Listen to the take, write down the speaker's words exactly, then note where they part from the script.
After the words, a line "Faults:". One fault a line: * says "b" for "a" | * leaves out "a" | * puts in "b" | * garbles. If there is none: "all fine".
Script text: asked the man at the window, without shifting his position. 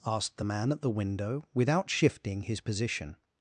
asked the man at the window, without shifting his position.
Faults:
all fine